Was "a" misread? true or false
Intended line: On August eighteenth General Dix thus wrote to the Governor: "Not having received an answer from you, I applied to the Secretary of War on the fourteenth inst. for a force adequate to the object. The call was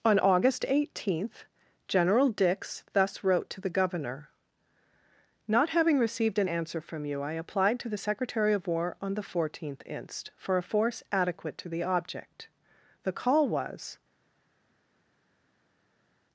false